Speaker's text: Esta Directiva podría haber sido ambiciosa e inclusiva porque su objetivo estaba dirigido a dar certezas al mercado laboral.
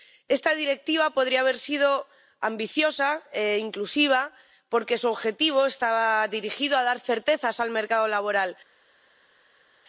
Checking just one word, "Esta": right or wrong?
right